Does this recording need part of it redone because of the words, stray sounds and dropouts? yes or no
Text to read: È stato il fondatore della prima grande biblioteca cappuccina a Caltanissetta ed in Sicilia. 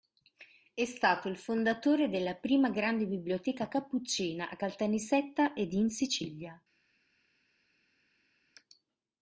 no